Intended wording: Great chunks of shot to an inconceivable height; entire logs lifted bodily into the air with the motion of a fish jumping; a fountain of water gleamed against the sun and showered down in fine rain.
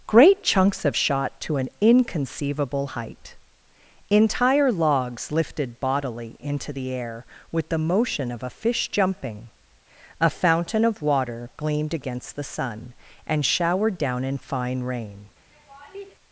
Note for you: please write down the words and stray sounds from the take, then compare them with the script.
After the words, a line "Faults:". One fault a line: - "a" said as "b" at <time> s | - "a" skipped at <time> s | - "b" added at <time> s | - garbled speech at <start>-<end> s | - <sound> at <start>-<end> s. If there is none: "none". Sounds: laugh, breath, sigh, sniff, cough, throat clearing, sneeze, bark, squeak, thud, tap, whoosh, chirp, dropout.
Great chunks of shot to an inconceivable height; entire logs lifted bodily into the air with the motion of a fish jumping; a fountain of water gleamed against the sun and showered down in fine rain.
Faults:
- laugh at 15.5-16.1 s